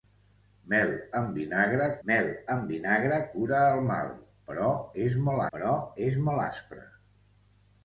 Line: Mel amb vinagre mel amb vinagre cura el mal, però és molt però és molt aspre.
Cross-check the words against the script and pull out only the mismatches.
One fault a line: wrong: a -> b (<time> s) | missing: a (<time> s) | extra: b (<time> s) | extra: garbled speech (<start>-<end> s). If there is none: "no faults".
no faults